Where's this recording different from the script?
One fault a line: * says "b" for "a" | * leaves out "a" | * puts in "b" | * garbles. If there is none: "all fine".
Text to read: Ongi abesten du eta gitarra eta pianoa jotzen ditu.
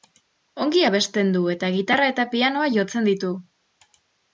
all fine